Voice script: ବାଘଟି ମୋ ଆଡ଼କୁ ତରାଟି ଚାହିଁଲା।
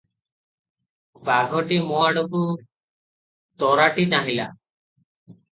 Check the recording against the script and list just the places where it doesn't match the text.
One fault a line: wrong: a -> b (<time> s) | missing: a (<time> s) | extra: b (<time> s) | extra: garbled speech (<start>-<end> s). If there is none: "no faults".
no faults